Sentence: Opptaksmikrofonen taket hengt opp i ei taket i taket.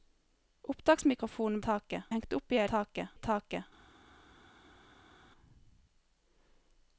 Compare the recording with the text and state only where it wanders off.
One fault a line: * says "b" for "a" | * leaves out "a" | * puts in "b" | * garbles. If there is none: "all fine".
all fine